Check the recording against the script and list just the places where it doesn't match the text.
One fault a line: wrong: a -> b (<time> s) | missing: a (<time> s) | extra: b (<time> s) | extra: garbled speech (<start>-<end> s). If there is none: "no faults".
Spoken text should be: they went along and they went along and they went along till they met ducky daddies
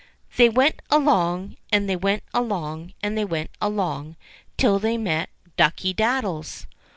no faults